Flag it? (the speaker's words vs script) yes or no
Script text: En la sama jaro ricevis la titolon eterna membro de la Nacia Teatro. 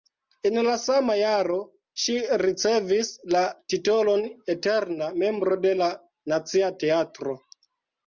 yes